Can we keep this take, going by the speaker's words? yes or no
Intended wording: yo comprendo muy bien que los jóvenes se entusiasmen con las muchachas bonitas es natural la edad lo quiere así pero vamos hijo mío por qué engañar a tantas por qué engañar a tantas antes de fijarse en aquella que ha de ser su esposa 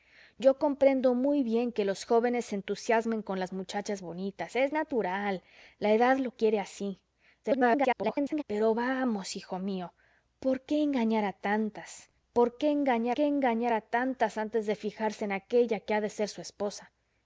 no